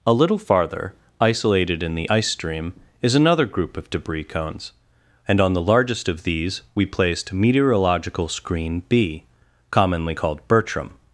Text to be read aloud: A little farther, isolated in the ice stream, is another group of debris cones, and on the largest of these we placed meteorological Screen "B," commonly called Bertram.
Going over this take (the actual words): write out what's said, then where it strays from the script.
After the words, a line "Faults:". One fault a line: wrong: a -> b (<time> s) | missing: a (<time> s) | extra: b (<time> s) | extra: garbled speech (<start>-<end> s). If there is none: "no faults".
A little farther, isolated in the ice stream, is another group of debris cones, and on the largest of these we placed meteorological Screen "B," commonly called Bertram.
Faults:
no faults